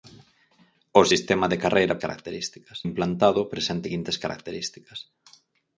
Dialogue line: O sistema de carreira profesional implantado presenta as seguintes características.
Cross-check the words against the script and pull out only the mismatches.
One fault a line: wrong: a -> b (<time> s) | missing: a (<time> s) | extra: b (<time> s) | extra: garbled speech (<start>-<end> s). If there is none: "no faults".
wrong: profesional -> características (2.0 s)
missing: as (3.9 s)